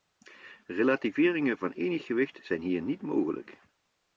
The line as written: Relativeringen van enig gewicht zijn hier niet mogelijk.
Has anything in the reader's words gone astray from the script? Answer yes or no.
no